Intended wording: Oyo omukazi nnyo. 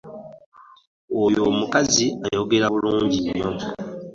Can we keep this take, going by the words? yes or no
no